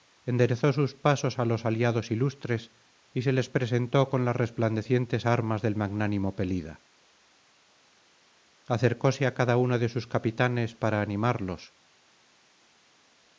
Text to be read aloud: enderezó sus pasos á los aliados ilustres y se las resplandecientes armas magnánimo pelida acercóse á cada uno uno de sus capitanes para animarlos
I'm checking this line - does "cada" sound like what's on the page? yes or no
yes